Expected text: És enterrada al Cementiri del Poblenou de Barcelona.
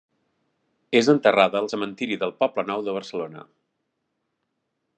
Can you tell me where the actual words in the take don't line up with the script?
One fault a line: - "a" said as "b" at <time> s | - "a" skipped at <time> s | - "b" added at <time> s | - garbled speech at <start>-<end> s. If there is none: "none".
none